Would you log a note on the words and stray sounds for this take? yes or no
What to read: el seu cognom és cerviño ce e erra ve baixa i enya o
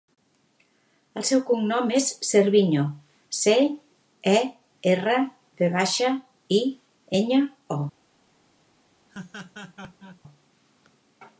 yes